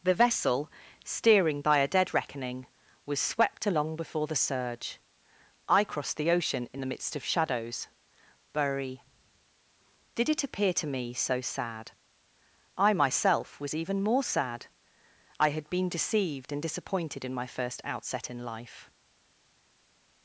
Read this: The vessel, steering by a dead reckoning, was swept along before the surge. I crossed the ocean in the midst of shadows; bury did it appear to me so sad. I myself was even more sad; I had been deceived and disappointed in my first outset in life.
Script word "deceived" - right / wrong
right